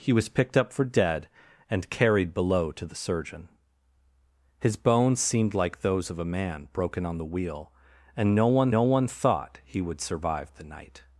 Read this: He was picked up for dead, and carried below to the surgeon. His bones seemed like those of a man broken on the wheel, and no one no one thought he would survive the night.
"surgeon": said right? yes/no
yes